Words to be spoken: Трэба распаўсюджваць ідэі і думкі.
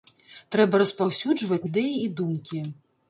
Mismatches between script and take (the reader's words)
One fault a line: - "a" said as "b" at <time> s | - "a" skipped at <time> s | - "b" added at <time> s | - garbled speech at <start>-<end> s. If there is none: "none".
none